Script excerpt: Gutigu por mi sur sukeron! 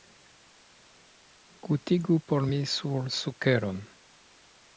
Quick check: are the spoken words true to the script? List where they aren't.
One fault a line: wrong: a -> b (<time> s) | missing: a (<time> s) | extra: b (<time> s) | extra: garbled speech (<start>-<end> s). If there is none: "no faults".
no faults